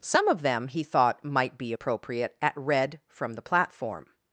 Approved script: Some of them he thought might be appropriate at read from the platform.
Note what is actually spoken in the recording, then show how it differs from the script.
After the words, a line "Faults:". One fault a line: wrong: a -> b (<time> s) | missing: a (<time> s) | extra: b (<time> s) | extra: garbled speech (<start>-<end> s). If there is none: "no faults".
Some of them he thought might be appropriate at read from the platform.
Faults:
no faults